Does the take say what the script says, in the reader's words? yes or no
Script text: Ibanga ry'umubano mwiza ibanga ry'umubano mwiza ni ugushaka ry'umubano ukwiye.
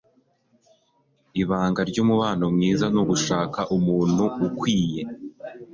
no